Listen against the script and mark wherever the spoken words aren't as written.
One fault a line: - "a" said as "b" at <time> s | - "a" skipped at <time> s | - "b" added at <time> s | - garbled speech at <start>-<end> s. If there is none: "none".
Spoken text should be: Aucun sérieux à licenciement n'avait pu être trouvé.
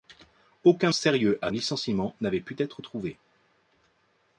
none